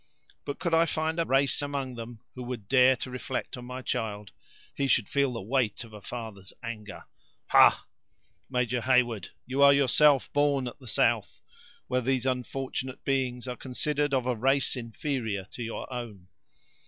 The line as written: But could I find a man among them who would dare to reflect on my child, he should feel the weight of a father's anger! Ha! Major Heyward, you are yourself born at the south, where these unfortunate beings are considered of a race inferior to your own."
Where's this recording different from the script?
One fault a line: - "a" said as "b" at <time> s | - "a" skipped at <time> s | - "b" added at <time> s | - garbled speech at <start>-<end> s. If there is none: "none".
- "man" said as "race" at 1.2 s